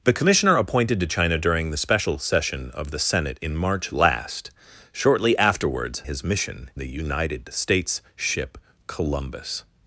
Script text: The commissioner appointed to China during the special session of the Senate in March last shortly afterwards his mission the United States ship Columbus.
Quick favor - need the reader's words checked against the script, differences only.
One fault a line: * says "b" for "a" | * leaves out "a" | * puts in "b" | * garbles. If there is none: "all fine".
all fine